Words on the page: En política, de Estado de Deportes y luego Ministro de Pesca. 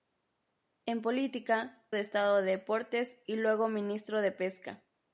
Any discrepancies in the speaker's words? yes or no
no